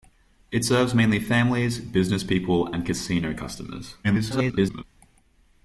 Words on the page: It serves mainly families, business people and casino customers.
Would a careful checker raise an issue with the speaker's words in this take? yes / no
yes